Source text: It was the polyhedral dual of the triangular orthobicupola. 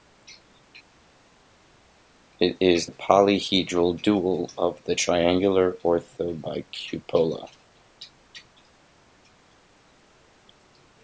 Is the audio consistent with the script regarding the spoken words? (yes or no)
no